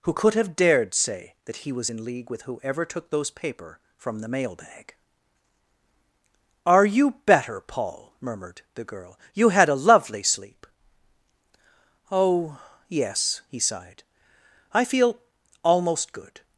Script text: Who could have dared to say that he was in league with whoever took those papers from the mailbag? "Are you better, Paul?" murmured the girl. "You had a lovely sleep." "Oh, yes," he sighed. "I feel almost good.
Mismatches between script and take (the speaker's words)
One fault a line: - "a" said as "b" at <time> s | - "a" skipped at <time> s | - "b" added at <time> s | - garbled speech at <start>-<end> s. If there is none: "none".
- "to" skipped at 0.9 s
- "papers" said as "paper" at 3.3 s